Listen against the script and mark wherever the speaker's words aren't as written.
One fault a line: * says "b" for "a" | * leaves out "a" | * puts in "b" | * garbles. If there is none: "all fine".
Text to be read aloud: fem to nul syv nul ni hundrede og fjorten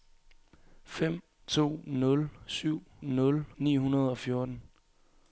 all fine